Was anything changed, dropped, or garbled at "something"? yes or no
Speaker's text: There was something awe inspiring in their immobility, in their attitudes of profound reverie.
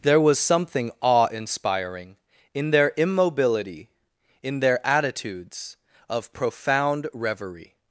no